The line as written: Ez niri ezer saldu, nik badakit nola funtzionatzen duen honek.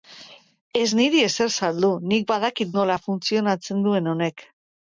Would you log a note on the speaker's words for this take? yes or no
no